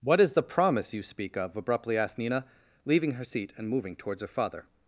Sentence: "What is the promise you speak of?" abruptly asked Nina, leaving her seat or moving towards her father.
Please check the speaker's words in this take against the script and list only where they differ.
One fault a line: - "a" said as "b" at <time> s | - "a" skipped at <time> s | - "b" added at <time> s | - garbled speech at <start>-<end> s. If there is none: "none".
- "or" said as "and" at 3.6 s